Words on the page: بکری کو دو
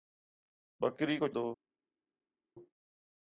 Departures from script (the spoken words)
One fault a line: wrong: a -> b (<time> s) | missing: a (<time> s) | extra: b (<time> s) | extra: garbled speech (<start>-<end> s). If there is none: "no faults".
no faults